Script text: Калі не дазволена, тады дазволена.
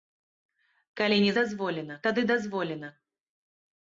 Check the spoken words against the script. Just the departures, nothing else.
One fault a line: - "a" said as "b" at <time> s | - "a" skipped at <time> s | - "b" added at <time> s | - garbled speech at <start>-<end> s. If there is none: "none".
none